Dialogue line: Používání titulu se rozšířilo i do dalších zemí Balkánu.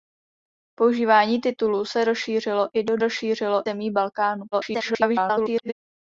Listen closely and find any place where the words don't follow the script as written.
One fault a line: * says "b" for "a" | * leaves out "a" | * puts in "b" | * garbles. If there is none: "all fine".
* says "rozšířilo" for "dalších"
* garbles